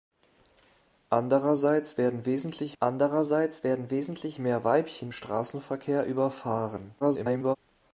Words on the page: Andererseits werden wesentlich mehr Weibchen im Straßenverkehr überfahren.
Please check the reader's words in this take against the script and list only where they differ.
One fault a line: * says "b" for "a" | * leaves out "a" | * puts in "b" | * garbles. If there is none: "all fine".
* puts in "andererseits werden wesentlich"
* leaves out "im"
* garbles